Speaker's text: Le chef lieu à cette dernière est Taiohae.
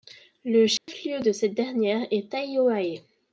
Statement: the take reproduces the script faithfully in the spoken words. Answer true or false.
false